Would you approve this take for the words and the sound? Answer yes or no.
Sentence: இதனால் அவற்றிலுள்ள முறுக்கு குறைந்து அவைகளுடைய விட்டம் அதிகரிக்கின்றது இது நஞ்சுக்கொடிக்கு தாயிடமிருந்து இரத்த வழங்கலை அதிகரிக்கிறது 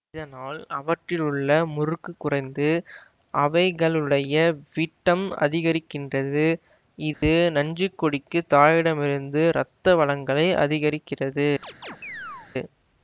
no